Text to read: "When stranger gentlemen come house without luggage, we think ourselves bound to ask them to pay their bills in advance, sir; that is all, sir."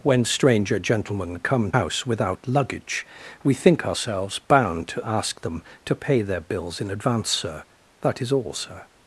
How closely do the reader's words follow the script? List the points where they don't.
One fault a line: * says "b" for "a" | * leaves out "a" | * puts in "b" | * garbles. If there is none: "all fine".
all fine